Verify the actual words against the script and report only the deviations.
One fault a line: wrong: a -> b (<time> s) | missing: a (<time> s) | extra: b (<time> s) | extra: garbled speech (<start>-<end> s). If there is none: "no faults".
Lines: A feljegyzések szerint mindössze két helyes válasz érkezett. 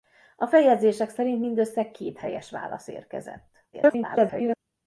extra: garbled speech (3.7-4.6 s)